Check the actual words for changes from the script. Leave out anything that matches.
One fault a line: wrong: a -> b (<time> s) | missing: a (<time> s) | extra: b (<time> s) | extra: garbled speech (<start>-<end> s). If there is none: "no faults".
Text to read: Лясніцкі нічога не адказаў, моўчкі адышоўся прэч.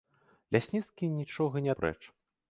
missing: адказаў моўчкі адышоўся (1.7 s)